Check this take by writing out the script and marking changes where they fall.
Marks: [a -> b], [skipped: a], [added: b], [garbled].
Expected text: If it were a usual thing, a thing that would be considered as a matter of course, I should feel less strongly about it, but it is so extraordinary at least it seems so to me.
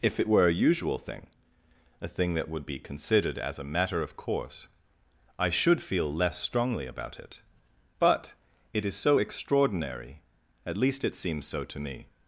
If it were a usual thing, a thing that would be considered as a matter of course, I should feel less strongly about it, but it is so extraordinary at least it seems so to me.